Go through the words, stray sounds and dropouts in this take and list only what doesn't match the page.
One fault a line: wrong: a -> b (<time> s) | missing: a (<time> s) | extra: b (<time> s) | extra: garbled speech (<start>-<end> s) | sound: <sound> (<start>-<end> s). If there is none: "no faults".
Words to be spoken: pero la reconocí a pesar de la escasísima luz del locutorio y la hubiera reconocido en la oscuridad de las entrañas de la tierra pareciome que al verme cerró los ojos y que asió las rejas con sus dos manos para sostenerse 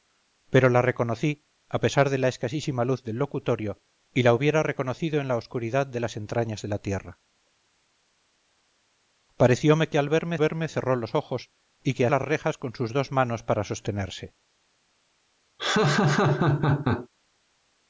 extra: verme (10.4 s)
missing: asió (12.1 s)
sound: laugh (15.6-17.1 s)